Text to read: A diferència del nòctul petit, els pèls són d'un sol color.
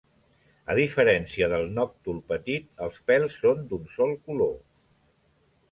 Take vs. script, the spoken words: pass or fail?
pass